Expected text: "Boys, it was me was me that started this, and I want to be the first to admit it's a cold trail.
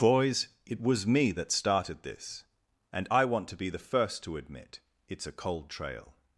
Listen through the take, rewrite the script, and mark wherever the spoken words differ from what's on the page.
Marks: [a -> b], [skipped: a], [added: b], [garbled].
"Boys, it was me [skipped: was me] that started this, and I want to be the first to admit it's a cold trail.